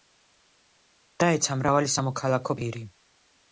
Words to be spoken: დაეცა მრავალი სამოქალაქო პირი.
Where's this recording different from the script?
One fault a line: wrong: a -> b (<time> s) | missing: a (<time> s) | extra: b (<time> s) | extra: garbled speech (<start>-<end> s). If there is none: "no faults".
no faults